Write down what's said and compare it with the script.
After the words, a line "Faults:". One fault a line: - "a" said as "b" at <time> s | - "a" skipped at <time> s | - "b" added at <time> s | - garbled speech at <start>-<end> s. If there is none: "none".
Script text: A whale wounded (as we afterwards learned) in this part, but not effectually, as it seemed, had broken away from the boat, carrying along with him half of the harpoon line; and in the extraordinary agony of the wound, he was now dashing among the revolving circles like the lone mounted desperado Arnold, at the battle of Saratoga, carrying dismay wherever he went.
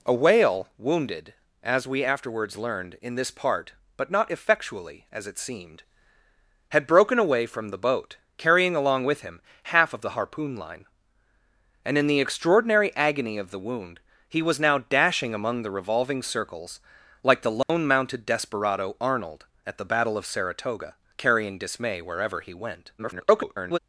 A whale wounded (as we afterwards learned) in this part, but not effectually, as it seemed, had broken away from the boat, carrying along with him half of the harpoon line; and in the extraordinary agony of the wound, he was now dashing among the revolving circles like the lone mounted desperado Arnold, at the battle of Saratoga, carrying dismay wherever he went. [garbled]
Faults:
- garbled speech at 23.0-23.8 s